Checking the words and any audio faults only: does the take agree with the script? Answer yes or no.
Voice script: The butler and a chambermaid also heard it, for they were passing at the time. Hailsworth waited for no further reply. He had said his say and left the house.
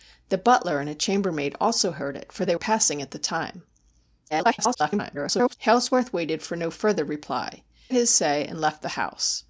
no